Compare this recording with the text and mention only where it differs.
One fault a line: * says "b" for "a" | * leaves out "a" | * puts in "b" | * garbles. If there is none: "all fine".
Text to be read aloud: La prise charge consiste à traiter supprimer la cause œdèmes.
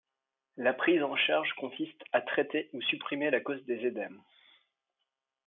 * puts in "en"
* puts in "ou"
* puts in "des"